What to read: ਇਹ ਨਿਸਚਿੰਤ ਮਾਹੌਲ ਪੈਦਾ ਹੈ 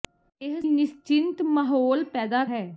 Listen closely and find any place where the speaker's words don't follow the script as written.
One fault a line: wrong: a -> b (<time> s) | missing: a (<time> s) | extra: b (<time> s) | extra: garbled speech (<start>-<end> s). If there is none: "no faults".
no faults